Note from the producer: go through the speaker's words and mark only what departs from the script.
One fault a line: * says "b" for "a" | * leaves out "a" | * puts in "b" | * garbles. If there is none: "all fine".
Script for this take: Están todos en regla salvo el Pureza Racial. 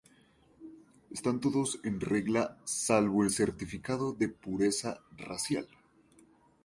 * puts in "Certificado de"